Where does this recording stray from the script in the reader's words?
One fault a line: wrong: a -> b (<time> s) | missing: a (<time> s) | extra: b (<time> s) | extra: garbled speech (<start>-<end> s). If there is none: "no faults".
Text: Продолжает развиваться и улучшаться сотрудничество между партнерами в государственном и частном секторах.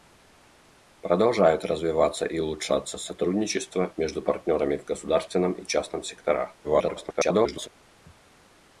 extra: garbled speech (6.6-7.7 s)